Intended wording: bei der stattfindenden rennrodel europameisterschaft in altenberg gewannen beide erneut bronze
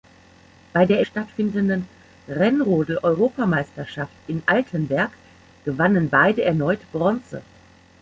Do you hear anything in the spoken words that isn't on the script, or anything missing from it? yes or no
no